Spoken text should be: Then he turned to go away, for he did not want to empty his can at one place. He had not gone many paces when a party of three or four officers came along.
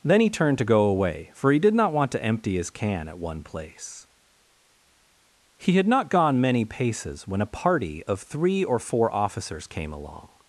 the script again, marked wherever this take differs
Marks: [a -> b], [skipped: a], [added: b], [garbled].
Then he turned to go away, for he did not want to empty his can at one place. He had not gone many paces when a party of three or four officers came along.